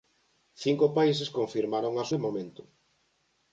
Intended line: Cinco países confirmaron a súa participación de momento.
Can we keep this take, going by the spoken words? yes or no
no